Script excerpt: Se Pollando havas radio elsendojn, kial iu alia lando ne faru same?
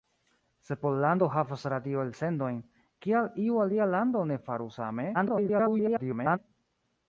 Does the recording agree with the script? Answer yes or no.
no